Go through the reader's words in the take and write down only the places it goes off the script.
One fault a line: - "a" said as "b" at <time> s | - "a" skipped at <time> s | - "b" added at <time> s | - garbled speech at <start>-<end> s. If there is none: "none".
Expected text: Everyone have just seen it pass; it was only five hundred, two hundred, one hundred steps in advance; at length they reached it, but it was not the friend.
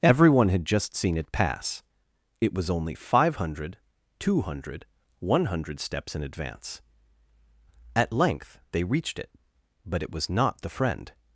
- "have" said as "had" at 0.5 s